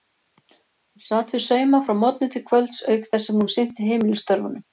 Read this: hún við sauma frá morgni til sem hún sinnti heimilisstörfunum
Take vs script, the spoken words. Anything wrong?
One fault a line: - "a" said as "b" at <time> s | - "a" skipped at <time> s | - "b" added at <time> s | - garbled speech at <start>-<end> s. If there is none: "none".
- "sat" added at 1.1 s
- "kvölds auk þess" added at 2.5 s